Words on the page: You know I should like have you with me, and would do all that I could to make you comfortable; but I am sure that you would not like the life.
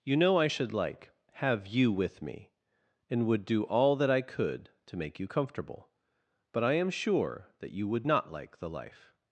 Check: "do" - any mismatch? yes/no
no